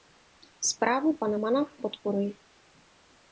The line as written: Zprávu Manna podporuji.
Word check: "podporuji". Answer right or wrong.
right